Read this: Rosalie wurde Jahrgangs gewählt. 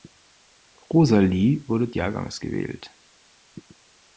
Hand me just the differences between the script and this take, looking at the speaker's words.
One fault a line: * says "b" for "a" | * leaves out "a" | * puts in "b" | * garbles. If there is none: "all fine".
all fine